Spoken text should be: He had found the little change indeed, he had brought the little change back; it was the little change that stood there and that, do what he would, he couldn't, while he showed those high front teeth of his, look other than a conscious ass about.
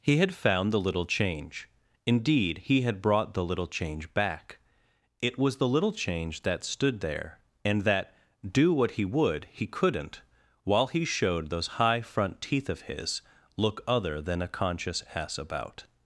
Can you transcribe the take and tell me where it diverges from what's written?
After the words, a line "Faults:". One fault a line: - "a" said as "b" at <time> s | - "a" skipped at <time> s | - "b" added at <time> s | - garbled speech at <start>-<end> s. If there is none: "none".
He had found the little change indeed, he had brought the little change back; it was the little change that stood there and that, do what he would, he couldn't, while he showed those high front teeth of his, look other than a conscious ass about.
Faults:
none